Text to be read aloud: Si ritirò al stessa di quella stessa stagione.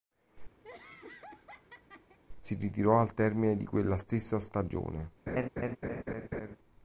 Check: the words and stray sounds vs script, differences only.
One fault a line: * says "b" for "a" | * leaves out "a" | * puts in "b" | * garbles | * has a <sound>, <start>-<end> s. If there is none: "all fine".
* has a laugh, 0.6-2.2 s
* says "termine" for "stessa"
* has a laugh, 5.3-6.6 s